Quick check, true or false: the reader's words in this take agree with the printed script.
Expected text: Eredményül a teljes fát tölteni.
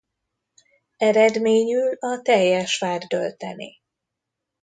true